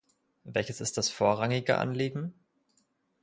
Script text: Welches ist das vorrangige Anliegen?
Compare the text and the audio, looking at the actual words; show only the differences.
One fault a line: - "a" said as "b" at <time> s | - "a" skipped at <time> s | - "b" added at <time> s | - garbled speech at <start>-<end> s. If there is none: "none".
none